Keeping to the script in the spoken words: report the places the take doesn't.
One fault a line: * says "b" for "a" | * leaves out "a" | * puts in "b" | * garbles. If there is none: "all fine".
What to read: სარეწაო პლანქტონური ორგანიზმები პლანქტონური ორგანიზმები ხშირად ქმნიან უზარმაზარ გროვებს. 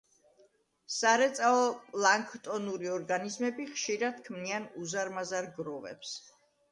* leaves out "პლანქტონური ორგანიზმები"